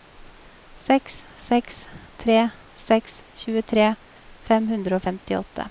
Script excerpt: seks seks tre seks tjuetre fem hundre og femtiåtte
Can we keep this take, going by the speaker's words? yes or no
yes